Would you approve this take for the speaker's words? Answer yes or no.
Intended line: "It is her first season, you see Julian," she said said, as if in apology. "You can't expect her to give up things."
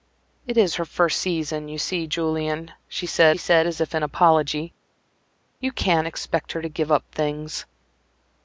yes